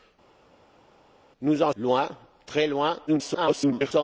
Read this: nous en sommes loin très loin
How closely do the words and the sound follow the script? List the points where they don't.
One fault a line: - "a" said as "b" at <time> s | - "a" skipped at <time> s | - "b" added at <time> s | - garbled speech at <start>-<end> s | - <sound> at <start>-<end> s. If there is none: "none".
- "sommes" skipped at 1.7 s
- garbled speech at 3.1-4.0 s